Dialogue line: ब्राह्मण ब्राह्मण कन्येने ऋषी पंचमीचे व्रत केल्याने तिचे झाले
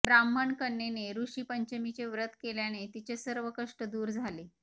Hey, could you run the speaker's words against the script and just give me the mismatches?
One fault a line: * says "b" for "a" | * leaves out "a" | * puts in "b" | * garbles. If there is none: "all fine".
* leaves out "ब्राह्मण"
* puts in "सर्व कष्ट दूर"